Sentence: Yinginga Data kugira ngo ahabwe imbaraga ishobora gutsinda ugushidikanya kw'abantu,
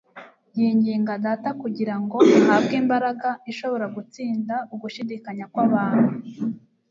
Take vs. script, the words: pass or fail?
pass